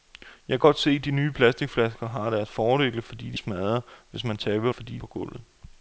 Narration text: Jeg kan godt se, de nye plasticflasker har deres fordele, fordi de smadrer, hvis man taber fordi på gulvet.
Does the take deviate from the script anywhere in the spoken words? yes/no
no